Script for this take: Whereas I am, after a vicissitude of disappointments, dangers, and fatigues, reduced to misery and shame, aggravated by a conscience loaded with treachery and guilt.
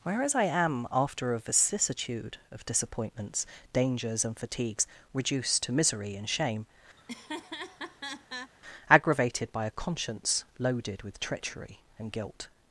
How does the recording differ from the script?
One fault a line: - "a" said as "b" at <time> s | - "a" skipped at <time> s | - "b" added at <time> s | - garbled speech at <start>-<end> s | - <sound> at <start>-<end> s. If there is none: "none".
- laugh at 7.0-8.5 s